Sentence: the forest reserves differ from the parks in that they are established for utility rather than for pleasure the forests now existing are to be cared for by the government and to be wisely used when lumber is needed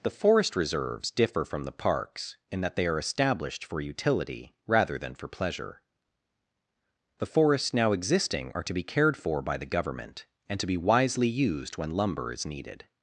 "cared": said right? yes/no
yes